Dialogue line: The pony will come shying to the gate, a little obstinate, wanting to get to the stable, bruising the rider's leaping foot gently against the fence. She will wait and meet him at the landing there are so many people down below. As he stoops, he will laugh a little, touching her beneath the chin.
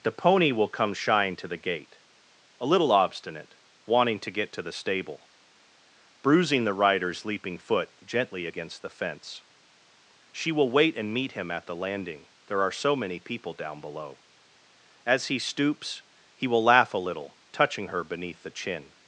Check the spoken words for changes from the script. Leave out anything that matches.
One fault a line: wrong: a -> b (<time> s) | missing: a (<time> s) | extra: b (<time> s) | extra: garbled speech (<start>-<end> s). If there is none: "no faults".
no faults